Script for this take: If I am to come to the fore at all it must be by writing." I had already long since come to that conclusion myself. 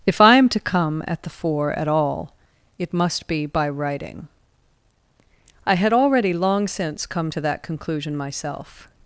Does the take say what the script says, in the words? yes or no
no